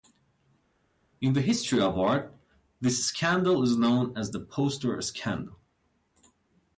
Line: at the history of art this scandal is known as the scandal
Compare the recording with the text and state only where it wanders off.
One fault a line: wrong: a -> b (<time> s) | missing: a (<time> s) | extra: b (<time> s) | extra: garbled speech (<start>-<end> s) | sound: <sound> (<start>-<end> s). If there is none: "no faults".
wrong: at -> in (1.2 s)
extra: poster (4.4 s)